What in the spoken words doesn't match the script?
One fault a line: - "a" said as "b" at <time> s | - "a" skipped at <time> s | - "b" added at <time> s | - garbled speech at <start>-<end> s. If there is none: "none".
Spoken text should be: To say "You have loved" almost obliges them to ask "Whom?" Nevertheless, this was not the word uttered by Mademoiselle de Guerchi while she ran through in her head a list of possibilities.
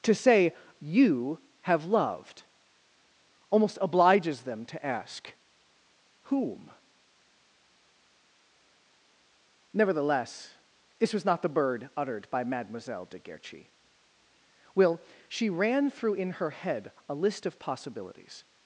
- "word" said as "bird" at 11.5 s
- "while" said as "will" at 14.8 s